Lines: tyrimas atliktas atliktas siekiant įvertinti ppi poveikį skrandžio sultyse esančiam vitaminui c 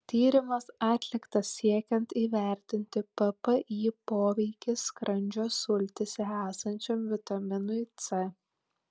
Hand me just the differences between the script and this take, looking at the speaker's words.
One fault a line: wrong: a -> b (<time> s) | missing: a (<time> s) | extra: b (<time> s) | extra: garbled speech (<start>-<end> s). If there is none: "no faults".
missing: atliktas (1.5 s)